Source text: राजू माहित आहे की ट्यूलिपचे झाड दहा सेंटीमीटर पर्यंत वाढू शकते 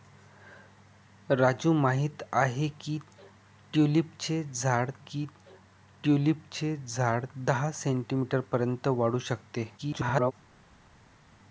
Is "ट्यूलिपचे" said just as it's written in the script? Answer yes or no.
yes